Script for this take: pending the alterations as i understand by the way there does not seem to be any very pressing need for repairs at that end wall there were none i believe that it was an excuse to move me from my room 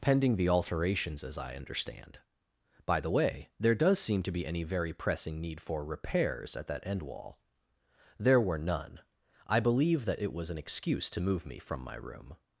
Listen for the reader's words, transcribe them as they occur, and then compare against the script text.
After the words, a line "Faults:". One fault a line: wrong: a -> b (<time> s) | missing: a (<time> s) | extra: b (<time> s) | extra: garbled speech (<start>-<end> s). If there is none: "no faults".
pending the alterations as i understand by the way there does seem to be any very pressing need for repairs at that end wall there were none i believe that it was an excuse to move me from my room
Faults:
missing: not (4.0 s)